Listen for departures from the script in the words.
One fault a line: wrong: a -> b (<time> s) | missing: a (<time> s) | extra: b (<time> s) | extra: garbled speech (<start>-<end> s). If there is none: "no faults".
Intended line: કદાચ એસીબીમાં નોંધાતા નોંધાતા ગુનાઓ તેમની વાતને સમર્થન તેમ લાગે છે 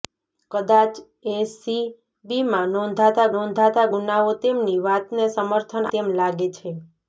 no faults